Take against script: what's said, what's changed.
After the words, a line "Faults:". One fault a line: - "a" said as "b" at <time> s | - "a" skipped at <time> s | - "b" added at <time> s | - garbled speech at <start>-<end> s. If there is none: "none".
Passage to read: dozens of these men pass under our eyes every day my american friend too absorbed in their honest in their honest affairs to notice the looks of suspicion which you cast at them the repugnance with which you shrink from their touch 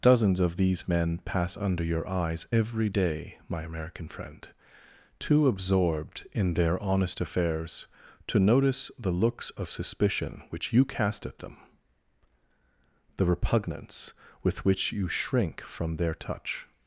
dozens of these men pass under your eyes every day my american friend too absorbed in their honest affairs to notice the looks of suspicion which you cast at them the repugnance with which you shrink from their touch
Faults:
- "our" said as "your" at 1.8 s
- "in their honest" skipped at 7.2 s